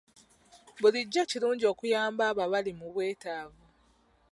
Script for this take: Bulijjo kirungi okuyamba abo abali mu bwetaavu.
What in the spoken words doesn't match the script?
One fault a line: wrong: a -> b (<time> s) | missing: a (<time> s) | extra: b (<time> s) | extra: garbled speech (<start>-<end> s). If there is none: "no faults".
no faults